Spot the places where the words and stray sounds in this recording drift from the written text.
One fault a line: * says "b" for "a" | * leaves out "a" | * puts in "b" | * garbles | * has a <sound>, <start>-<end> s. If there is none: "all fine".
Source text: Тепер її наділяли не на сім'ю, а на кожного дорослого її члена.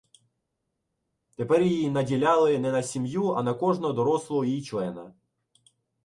all fine